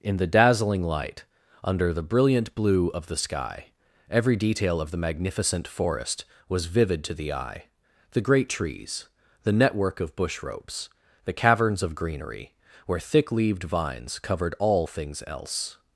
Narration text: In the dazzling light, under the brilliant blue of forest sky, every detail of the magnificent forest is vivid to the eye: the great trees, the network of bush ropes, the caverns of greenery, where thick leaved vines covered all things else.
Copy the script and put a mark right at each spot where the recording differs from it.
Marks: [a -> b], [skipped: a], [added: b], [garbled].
In the dazzling light, under the brilliant blue of [forest -> the] sky, every detail of the magnificent forest [is -> was] vivid to the eye: the great trees, the network of bush ropes, the caverns of greenery, where thick leaved vines covered all things else.